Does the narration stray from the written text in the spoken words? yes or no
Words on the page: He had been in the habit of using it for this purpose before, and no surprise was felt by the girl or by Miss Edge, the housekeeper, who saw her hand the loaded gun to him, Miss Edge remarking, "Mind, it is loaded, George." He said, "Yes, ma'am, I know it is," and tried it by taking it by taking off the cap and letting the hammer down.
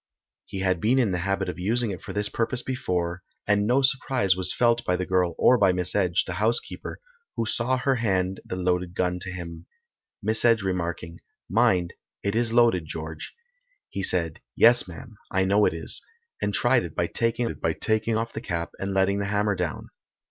no